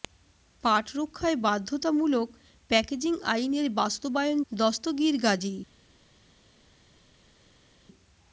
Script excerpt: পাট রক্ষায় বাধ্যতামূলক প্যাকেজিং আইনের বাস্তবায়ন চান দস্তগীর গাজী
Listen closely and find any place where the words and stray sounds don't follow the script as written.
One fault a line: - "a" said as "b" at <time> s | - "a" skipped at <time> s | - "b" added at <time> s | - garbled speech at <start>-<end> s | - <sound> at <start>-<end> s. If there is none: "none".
- "চান" skipped at 4.4 s